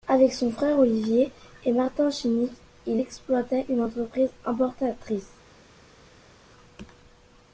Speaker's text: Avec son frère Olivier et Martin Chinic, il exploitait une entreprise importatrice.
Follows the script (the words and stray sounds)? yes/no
yes